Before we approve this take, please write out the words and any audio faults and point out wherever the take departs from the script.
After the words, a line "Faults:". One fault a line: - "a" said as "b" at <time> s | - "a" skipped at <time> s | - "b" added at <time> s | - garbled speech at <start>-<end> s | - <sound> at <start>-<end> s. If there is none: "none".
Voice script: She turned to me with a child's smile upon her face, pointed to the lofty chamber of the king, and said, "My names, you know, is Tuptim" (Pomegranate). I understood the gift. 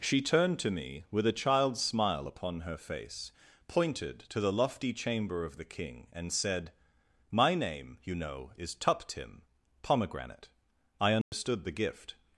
She turned to me with a child's smile upon her face, pointed to the lofty chamber of the king, and said, "My name, you know, is Tuptim" (Pomegranate). I understood the gift.
Faults:
- "names" said as "name" at 7.5 s
- dropout at 11.2-11.3 s